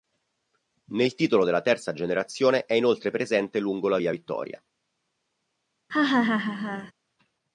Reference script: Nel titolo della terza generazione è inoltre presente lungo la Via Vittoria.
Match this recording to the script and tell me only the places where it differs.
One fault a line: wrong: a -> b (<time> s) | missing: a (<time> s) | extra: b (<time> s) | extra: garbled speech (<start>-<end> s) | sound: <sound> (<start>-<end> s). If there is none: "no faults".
sound: laugh (5.9-6.9 s)